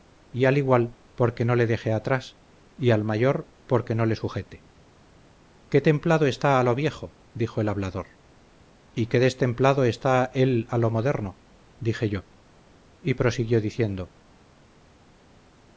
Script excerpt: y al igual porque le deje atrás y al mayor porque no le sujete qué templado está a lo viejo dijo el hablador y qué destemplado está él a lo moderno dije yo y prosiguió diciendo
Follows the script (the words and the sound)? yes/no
no